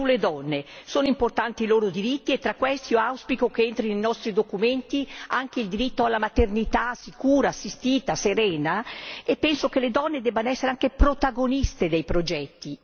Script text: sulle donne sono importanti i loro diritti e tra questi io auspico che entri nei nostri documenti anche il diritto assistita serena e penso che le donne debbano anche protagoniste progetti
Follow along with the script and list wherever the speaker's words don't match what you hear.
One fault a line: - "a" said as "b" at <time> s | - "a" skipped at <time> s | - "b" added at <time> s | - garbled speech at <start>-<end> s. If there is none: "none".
- "alla maternità sicura" added at 6.0 s
- "essere" added at 10.5 s
- "dei" added at 11.9 s